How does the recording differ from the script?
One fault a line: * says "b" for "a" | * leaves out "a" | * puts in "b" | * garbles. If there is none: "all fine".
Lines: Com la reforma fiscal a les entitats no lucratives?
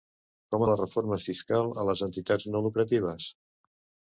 all fine